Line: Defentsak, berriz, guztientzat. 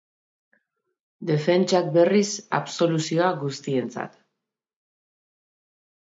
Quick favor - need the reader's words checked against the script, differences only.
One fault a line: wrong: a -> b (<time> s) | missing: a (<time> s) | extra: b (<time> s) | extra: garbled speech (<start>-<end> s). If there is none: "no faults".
extra: absoluzioa (2.6 s)